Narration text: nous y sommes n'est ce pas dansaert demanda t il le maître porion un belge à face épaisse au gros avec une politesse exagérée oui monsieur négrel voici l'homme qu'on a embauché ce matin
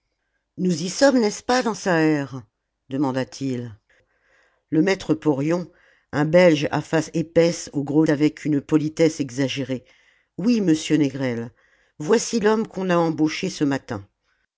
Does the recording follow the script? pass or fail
pass